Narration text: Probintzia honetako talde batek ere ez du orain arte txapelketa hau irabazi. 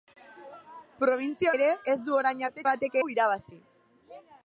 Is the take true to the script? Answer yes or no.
no